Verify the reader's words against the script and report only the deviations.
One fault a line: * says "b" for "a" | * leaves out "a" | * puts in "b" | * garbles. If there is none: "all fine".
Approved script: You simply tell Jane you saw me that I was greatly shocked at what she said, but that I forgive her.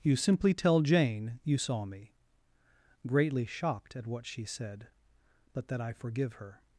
* leaves out "that I was"